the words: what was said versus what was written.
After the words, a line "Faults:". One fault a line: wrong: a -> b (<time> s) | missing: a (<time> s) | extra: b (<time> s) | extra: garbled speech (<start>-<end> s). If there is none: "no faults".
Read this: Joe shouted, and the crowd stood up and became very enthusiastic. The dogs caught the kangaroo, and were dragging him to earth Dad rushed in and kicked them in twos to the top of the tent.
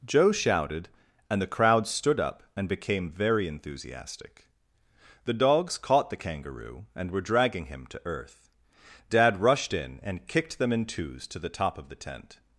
Joe shouted, and the crowd stood up and became very enthusiastic. The dogs caught the kangaroo, and were dragging him to earth Dad rushed in and kicked them in twos to the top of the tent.
Faults:
no faults